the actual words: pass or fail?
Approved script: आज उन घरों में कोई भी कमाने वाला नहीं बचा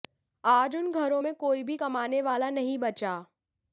pass